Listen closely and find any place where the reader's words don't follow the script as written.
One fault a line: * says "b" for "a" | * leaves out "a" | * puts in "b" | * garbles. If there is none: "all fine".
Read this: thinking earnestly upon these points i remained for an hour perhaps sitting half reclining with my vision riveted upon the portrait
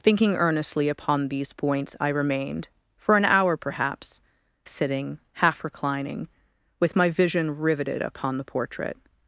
all fine